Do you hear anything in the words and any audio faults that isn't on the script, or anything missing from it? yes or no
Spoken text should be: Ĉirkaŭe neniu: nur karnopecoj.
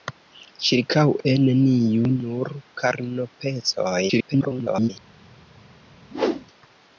yes